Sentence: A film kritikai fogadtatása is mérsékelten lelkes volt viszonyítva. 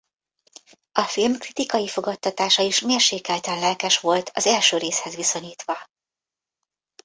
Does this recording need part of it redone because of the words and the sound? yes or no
yes